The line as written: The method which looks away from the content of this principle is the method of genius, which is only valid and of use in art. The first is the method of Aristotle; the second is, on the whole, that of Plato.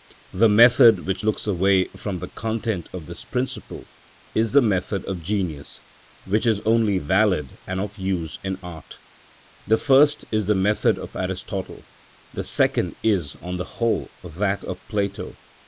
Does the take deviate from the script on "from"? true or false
false